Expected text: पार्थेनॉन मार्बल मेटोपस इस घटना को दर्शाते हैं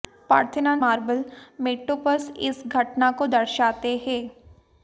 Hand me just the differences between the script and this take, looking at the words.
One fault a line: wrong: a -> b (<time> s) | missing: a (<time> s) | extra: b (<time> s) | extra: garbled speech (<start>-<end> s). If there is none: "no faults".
no faults